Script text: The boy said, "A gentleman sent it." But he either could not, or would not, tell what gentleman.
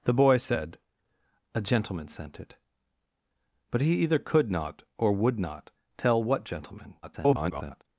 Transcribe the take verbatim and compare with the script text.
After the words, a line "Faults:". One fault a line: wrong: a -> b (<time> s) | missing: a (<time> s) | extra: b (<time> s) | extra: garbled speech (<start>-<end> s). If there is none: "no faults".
The boy said, "A gentleman sent it." But he either could not, or would not, tell what gentleman. [garbled]
Faults:
extra: garbled speech (7.0-7.8 s)